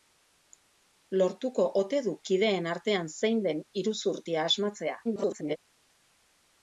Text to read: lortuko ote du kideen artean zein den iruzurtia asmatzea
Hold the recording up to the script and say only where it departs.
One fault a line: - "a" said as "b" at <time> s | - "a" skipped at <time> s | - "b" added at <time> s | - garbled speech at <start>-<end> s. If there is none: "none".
- garbled speech at 5.0-5.6 s